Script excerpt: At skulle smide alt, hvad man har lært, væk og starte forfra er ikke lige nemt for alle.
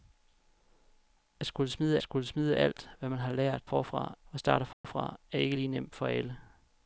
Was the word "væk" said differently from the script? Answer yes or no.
yes